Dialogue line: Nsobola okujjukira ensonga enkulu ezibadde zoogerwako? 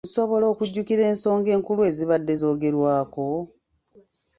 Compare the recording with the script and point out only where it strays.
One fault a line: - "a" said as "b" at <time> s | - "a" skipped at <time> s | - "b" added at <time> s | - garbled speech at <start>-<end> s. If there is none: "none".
none